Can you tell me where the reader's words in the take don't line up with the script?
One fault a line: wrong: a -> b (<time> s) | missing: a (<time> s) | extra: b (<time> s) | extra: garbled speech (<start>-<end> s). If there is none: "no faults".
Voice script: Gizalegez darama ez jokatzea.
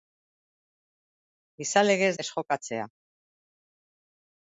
missing: darama (2.1 s)